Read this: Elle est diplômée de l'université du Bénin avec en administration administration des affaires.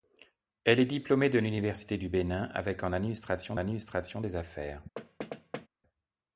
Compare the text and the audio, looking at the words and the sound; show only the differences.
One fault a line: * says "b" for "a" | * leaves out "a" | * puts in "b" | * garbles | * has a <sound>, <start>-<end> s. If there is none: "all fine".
* has a thud, 5.0-5.7 s